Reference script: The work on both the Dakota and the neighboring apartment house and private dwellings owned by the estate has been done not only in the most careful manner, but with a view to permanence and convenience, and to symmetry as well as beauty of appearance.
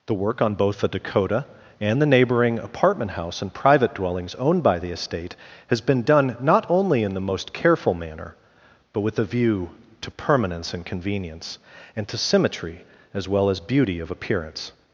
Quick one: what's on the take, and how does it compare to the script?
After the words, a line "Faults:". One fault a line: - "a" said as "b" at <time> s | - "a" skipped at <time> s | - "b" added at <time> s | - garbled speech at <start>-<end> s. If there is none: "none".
The work on both the Dakota and the neighboring apartment house and private dwellings owned by the estate has been done not only in the most careful manner, but with a view to permanence and convenience, and to symmetry as well as beauty of appearance.
Faults:
none